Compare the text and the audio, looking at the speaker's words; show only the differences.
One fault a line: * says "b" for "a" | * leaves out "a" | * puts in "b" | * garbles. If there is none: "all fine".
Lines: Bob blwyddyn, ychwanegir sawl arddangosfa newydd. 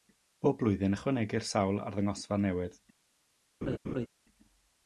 all fine